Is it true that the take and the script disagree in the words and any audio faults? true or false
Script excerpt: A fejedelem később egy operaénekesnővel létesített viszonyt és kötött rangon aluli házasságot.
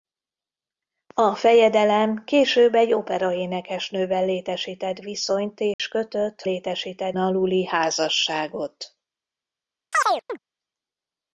true